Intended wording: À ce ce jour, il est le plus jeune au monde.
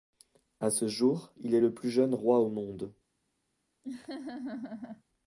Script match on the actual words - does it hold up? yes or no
no